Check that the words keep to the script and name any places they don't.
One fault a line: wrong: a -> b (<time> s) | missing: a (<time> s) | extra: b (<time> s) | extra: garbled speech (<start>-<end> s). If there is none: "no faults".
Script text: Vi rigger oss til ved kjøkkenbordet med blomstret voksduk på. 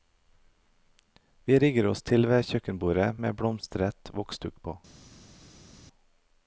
no faults